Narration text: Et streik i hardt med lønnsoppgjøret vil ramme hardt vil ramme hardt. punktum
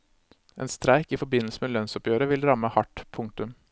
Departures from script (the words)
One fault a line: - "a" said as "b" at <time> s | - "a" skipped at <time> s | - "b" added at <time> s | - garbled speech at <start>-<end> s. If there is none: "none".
- "Et" said as "En" at 0.6 s
- "hardt" said as "forbindelse" at 1.2 s
- "vil ramme hardt" skipped at 3.0 s